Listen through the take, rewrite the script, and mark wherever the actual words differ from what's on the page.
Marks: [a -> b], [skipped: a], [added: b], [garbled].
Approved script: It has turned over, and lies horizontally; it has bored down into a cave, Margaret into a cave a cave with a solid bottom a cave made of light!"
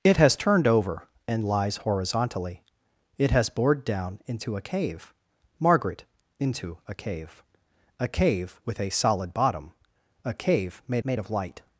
It has turned over, and lies horizontally; it has bored down into a cave, Margaret into a cave a cave with a solid bottom a cave made [added: made] of light!"